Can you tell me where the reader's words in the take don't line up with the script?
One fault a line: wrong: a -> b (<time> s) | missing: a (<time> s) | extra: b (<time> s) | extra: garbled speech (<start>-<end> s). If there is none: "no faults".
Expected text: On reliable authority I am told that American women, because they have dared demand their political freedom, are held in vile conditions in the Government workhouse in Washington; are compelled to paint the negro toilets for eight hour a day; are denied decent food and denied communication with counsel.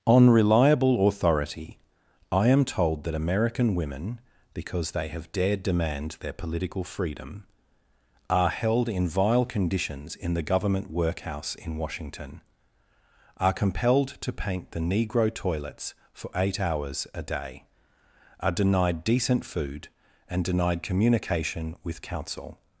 wrong: hour -> hours (16.6 s)